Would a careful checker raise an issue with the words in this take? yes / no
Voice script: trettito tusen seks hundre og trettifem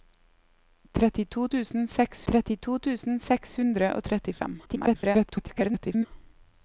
yes